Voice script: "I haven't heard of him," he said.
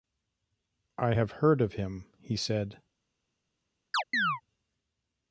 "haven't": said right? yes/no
no